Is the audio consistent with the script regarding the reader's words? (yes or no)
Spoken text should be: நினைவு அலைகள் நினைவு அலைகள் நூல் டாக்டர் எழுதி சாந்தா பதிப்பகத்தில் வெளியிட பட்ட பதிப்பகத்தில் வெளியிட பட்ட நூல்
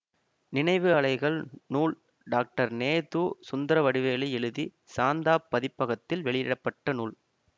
no